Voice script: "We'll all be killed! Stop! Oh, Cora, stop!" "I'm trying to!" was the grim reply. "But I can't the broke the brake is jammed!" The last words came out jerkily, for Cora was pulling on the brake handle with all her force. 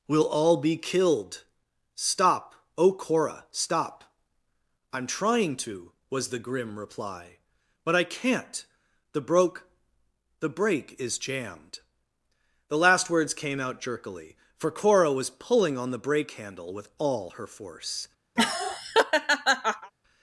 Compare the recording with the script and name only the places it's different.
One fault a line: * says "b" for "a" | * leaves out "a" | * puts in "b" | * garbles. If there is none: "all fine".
all fine